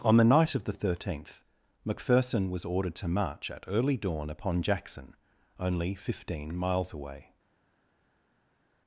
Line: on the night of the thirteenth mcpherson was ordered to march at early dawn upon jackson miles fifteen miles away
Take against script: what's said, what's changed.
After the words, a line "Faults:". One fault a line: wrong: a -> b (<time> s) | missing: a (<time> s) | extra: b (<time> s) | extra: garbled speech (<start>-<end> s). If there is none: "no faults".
on the night of the thirteenth mcpherson was ordered to march at early dawn upon jackson only fifteen miles away
Faults:
wrong: miles -> only (5.6 s)